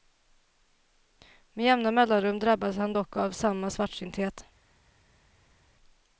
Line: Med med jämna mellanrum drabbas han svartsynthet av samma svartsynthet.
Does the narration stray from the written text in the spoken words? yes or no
yes